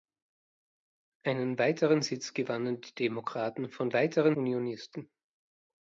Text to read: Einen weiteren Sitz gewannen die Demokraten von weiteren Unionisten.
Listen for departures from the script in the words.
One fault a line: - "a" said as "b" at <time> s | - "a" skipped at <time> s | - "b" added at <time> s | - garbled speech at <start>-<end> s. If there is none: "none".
none